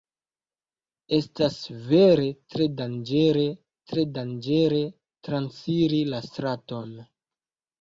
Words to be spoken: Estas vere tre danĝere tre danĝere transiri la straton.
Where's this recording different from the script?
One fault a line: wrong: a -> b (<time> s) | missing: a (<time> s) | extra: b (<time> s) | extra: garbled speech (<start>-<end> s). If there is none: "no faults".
no faults